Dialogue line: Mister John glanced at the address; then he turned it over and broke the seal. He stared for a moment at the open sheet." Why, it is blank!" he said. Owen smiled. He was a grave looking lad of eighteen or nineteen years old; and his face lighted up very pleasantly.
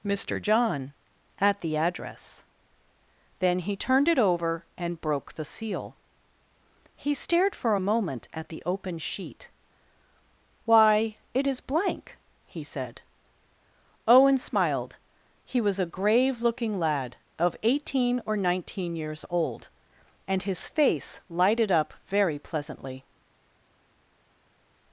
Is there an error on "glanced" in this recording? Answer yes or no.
yes